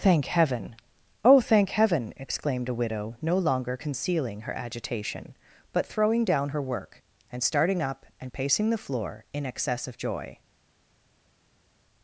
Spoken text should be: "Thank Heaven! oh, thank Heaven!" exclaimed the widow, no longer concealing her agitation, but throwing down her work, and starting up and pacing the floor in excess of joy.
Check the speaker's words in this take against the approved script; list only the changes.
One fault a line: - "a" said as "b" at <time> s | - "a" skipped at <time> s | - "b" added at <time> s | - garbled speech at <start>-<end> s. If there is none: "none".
- "the" said as "a" at 2.7 s